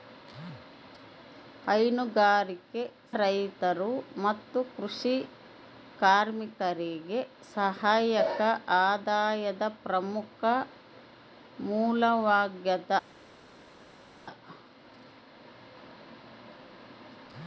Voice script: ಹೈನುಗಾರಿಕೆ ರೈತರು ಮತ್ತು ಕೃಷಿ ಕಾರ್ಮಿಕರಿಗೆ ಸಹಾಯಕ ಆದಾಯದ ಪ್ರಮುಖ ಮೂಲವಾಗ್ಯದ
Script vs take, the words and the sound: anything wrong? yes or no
no